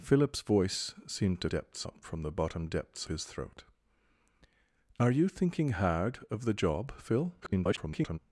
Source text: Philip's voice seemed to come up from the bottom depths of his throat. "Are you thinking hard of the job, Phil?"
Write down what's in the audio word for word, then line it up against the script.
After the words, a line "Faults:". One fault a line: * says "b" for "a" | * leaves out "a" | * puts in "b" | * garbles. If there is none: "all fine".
Philip's voice seemed to depths up from the bottom depths his throat. "Are you thinking hard of the job, Phil?" [garbled]
Faults:
* says "depths" for "come"
* leaves out "of"
* garbles